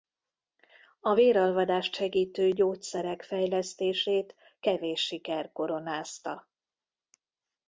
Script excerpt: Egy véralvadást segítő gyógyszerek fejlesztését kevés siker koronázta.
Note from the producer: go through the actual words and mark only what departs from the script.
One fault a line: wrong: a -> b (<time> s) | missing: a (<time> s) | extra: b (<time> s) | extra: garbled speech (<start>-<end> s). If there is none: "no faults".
wrong: Egy -> A (1.0 s)